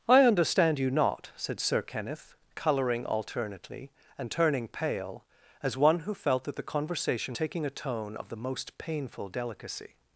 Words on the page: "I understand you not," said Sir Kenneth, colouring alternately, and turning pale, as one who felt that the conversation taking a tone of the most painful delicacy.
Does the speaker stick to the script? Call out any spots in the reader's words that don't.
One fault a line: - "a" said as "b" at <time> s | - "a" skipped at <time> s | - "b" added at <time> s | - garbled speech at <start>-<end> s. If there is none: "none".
none